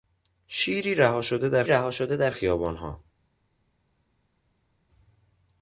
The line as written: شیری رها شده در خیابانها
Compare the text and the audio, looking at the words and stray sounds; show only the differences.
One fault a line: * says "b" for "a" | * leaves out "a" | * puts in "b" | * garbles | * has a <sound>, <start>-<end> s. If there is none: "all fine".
* puts in "رها شده در"